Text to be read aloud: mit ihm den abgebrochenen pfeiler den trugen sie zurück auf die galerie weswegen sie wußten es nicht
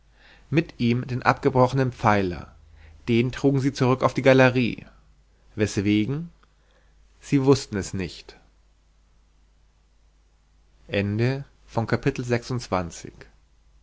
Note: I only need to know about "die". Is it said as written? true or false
true